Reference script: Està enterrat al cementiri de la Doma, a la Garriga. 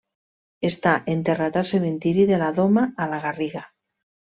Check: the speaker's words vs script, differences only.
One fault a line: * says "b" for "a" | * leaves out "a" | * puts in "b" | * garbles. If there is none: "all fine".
all fine